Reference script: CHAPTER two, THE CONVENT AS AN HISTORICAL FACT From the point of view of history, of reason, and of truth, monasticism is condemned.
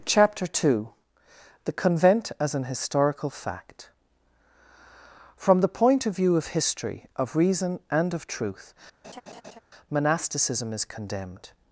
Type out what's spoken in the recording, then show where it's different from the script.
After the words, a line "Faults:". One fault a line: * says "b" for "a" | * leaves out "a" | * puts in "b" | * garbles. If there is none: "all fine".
CHAPTER two, THE CONVENT AS AN HISTORICAL FACT From the point of view of history, of reason, and of truth, monasticism is condemned.
Faults:
all fine